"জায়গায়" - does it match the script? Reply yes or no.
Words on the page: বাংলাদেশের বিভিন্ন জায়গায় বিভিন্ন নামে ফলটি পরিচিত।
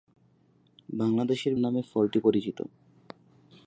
no